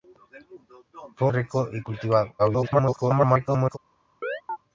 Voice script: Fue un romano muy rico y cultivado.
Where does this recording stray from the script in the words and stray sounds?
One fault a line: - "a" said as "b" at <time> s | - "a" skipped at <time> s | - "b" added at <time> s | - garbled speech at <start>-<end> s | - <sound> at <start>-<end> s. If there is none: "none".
- "un romano muy" skipped at 1.3 s
- garbled speech at 2.4-3.8 s
- chirp at 4.2-4.6 s